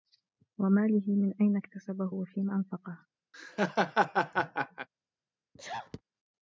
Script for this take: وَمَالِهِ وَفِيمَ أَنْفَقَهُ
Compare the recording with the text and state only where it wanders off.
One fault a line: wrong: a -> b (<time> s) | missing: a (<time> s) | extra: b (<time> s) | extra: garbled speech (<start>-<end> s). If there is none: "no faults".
extra: مِنْ أَيْنَ اكْتَسَبَهُ (1.1 s)